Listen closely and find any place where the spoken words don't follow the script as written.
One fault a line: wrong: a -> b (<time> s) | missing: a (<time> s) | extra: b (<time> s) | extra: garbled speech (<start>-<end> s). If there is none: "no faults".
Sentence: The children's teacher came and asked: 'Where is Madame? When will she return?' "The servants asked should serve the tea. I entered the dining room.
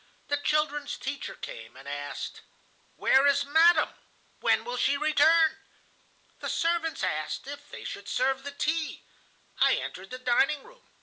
extra: if they (7.5 s)